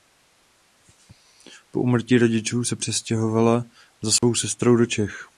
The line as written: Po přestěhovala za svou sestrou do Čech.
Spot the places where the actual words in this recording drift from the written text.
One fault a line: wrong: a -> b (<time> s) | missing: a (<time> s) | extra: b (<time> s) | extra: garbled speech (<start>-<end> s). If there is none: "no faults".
extra: úmrtí rodičů se (1.8 s)